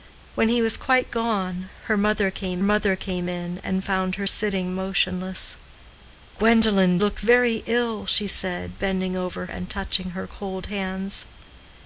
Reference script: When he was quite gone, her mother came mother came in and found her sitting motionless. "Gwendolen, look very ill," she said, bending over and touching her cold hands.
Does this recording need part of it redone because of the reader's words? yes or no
no